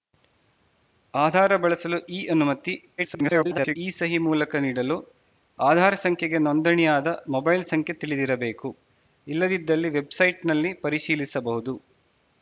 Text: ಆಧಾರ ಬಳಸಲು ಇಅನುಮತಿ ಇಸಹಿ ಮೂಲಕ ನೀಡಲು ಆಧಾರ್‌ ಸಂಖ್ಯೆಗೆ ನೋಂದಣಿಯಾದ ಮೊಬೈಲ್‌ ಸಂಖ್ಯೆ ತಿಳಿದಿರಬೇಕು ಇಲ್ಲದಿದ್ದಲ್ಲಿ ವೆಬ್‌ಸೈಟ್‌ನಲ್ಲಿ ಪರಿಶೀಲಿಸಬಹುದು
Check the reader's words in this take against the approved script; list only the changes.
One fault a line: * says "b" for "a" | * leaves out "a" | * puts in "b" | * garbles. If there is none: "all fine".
* garbles